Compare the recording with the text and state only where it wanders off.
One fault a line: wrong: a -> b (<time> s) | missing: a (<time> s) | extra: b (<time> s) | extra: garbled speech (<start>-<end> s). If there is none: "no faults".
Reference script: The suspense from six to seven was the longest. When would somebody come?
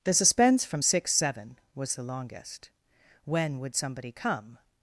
missing: to (1.1 s)